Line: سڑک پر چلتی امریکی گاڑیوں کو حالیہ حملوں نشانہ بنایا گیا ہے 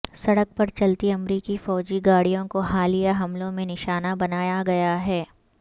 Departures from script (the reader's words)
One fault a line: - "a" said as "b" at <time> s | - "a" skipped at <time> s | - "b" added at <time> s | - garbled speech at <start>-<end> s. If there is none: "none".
- "فوجی" added at 1.6 s
- "میں" added at 3.5 s